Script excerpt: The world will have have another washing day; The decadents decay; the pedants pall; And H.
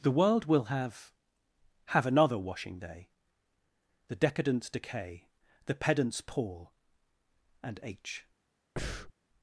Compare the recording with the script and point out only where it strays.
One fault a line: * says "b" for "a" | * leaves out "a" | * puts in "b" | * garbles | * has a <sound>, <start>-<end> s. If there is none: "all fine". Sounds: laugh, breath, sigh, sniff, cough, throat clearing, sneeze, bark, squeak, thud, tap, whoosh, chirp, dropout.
* has a breath, 8.8-9.1 s